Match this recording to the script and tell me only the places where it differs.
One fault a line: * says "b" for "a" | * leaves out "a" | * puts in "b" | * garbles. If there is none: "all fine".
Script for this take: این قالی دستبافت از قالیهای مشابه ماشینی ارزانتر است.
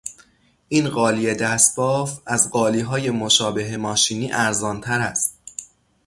all fine